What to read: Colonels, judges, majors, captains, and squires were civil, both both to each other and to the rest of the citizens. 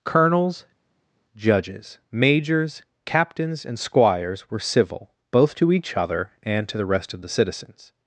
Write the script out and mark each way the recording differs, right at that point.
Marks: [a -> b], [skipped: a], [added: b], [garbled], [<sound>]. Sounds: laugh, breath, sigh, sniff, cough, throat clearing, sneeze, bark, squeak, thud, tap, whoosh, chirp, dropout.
Colonels, judges, majors, captains, and squires were civil, both [skipped: both] to each other and to the rest of the citizens.